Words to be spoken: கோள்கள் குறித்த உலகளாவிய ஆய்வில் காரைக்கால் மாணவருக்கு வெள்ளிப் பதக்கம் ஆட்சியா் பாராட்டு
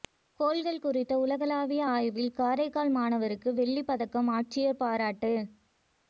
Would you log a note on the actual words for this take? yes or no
no